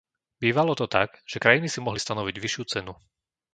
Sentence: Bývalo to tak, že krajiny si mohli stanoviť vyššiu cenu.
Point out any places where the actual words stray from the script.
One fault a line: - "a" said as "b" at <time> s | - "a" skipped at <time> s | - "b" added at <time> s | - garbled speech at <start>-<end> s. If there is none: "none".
none